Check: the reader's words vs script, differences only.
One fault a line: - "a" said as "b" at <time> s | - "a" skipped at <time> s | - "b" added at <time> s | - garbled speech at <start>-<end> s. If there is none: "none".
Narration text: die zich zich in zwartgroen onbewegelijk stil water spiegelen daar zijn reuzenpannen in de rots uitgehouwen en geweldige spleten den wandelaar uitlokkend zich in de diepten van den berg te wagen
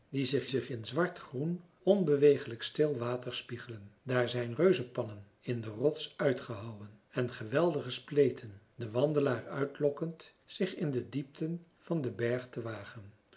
none